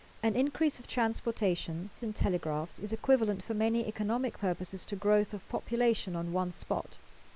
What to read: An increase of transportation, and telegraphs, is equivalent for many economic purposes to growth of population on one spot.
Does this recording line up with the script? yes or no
yes